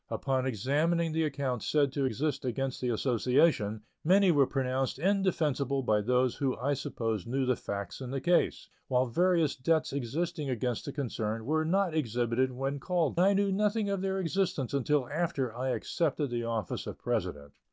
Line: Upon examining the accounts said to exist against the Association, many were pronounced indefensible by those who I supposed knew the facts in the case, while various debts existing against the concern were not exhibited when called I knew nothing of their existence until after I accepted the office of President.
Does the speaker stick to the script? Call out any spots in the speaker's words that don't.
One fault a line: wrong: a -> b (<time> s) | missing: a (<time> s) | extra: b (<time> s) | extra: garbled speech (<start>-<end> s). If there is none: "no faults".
no faults